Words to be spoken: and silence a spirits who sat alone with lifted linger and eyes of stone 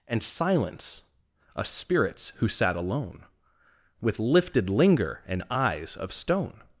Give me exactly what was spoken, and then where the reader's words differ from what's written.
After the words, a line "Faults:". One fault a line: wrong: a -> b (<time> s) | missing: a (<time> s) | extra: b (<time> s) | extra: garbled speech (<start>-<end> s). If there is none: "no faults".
and silence a spirits who sat alone with lifted linger and eyes of stone
Faults:
no faults